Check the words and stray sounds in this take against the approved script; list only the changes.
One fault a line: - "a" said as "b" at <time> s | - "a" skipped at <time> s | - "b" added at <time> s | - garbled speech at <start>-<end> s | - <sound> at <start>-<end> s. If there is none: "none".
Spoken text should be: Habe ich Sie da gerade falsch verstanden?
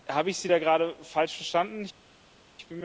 none